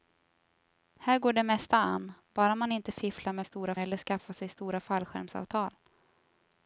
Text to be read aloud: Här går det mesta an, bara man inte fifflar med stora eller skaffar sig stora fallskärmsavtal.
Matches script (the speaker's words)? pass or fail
pass